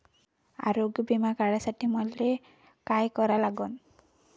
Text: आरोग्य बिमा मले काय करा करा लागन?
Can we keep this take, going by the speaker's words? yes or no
no